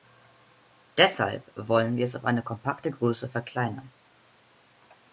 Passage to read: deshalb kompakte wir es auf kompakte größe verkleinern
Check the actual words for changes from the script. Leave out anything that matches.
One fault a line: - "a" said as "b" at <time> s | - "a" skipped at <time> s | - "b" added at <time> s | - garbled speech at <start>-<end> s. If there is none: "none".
- "kompakte" said as "wollen" at 1.6 s
- "eine" added at 2.2 s